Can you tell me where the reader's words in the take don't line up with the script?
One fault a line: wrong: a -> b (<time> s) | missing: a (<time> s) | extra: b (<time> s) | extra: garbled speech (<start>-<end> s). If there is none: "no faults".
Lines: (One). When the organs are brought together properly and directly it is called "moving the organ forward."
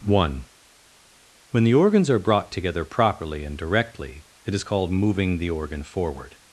no faults